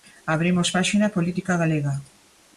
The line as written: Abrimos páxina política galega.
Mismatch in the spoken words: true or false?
false